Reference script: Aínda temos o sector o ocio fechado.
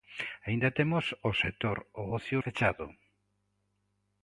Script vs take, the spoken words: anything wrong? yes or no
no